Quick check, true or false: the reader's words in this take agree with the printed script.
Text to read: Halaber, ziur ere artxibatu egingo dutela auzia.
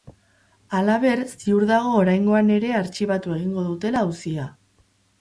false